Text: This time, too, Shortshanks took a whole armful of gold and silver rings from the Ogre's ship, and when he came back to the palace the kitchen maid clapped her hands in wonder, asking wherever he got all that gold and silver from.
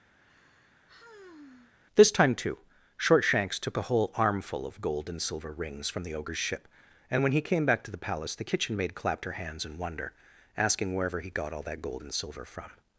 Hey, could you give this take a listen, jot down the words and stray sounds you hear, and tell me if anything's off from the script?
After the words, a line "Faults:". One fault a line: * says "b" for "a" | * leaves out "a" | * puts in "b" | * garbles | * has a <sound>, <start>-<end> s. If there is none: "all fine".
This time, too, Shortshanks took a whole armful of gold and silver rings from the Ogre's ship, and when he came back to the palace the kitchen maid clapped her hands in wonder, asking wherever he got all that gold and silver from.
Faults:
* has a sigh, 0.2-1.7 s